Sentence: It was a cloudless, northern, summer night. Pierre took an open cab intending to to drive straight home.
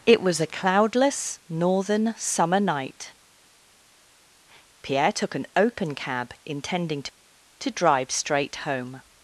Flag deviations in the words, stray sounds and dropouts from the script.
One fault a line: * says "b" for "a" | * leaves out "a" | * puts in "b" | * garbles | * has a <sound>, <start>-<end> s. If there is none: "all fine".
all fine